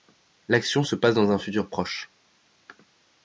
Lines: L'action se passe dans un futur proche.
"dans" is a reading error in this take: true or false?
false